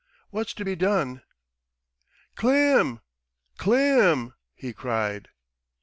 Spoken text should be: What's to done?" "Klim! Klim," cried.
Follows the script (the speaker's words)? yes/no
no